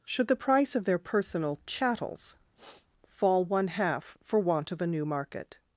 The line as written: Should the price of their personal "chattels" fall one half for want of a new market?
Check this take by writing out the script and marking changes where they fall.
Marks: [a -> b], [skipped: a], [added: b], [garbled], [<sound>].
Should the price of their personal "chattels" [sniff] fall one half for want of a new market?